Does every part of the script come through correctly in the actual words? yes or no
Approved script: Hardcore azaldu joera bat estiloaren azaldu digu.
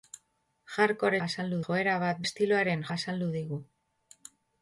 yes